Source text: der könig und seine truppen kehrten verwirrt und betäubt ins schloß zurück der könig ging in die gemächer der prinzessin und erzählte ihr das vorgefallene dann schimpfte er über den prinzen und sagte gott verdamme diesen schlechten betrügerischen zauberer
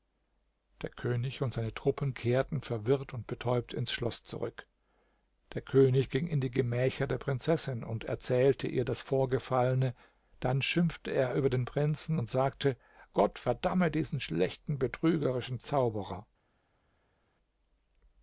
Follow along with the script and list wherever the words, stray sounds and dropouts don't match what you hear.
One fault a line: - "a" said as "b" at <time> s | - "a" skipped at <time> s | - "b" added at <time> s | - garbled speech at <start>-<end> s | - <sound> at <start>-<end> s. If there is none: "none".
none